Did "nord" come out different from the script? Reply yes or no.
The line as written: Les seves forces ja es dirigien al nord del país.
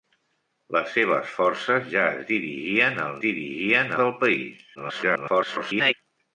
yes